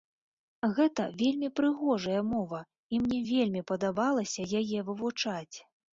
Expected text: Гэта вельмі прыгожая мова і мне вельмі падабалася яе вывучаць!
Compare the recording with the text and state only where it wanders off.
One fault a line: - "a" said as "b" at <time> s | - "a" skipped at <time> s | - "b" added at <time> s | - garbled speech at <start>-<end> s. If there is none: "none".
none